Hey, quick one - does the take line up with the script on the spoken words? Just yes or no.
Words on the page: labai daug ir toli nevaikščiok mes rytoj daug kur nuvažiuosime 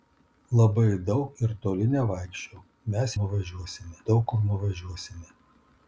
no